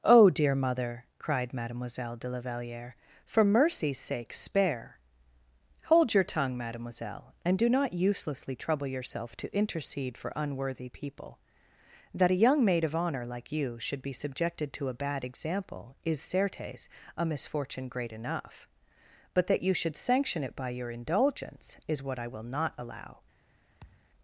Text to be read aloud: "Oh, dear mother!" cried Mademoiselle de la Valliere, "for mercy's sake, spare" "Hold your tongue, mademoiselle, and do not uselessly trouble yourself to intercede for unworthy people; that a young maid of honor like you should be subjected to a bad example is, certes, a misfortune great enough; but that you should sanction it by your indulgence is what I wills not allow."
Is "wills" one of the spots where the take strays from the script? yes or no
yes